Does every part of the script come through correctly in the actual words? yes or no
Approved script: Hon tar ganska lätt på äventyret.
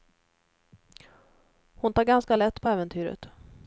yes